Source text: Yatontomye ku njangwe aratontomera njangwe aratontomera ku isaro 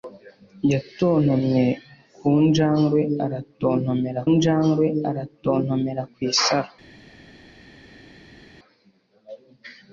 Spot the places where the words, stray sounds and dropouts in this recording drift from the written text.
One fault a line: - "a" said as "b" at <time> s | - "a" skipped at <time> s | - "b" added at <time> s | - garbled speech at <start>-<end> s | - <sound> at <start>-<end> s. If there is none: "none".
none